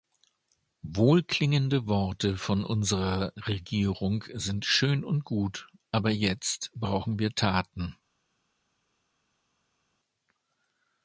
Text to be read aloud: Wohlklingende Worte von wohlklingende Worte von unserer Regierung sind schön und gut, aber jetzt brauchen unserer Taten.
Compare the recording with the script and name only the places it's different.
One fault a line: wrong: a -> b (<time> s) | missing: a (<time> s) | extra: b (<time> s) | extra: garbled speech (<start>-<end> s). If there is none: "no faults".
missing: wohlklingende Worte von (2.6 s)
wrong: unserer -> wir (7.2 s)